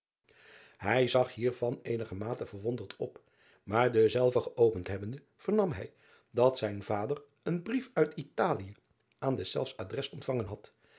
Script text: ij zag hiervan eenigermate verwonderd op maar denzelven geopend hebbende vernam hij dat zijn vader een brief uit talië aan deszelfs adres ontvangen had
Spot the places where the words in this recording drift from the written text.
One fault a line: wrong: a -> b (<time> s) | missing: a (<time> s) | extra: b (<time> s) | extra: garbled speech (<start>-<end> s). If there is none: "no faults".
no faults